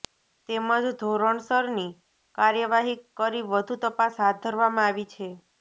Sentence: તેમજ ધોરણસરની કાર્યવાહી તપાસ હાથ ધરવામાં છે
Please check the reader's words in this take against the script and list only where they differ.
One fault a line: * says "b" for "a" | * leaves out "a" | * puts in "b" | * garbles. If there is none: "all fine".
* puts in "કરી વધુ"
* puts in "આવી"